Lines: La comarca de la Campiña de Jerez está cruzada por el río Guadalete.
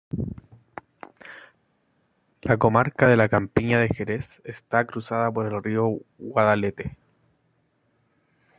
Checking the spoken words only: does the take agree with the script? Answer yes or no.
yes